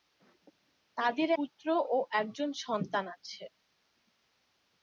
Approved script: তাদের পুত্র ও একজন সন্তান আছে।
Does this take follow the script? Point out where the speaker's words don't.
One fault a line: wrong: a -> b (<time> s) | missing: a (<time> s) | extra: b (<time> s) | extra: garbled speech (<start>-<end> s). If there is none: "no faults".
no faults